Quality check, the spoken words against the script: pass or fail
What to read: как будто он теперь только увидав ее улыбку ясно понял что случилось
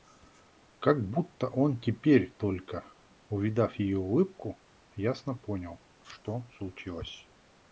pass